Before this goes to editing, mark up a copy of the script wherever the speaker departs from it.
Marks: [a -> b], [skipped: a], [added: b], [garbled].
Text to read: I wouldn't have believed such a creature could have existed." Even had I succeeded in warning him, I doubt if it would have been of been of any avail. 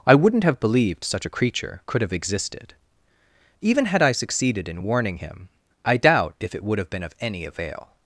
I wouldn't have believed such a creature could have existed." Even had I succeeded in warning him, I doubt if it would have been of [skipped: been of] any avail.